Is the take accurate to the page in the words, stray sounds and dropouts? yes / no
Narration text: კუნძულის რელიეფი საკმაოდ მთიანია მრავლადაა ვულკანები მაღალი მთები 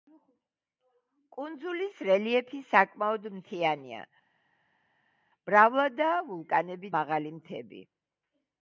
yes